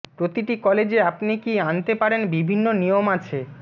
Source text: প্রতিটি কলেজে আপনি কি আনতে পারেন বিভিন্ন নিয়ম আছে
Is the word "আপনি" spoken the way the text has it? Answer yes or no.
yes